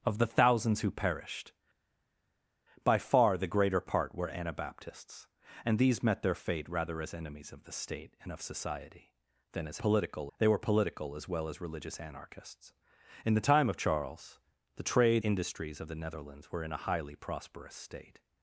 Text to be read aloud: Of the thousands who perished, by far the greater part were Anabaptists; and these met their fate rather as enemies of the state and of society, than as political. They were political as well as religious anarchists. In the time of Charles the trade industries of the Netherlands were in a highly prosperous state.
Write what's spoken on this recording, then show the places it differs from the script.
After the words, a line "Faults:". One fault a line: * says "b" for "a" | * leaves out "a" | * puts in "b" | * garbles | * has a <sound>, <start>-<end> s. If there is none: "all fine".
Of the thousands who perished, by far the greater part were Anabaptists; and these met their fate rather as enemies of the state and of society, than as political. They were political as well as religious anarchists. In the time of Charles the trade industries of the Netherlands were in a highly prosperous state.
Faults:
all fine